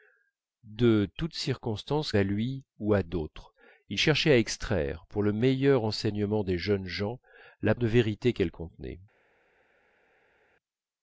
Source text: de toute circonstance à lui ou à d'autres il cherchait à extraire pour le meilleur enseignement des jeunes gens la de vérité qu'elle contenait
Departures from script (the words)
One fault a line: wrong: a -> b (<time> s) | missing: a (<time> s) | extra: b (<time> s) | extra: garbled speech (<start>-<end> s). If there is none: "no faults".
no faults